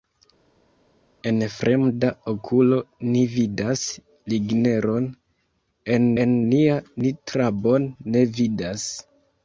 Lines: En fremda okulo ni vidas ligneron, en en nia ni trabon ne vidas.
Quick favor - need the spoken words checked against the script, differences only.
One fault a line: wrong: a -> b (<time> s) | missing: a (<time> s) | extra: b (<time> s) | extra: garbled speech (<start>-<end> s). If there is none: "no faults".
no faults